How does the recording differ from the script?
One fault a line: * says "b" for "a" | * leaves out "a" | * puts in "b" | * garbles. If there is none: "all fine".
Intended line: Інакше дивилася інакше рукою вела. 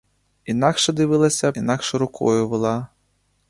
all fine